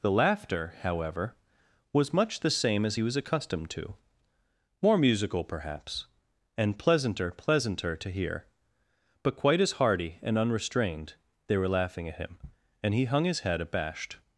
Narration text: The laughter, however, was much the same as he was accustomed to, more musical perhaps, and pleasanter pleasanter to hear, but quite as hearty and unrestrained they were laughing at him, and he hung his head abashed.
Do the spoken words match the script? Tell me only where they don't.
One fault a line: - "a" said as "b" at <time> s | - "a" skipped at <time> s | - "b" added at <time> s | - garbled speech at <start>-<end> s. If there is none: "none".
none